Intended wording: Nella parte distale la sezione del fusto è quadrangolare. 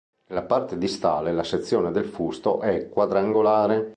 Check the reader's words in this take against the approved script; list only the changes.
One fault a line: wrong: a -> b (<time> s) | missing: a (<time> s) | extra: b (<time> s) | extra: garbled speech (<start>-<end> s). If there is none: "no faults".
no faults